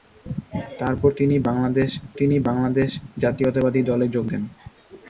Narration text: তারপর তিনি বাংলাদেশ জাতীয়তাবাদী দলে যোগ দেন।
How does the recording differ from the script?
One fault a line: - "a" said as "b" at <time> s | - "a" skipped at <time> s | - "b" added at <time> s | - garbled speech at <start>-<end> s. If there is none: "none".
- "তিনি বাংলাদেশ" added at 2.2 s